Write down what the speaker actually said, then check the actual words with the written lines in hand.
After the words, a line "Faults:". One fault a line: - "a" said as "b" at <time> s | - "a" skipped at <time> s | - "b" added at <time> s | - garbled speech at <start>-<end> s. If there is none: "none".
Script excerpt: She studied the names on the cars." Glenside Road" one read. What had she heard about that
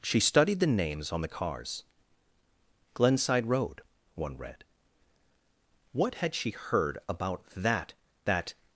She studied the names on the cars." Glenside Road" one read. What had she heard about that that
Faults:
- "that" added at 8.2 s